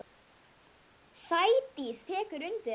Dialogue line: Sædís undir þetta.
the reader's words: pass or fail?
fail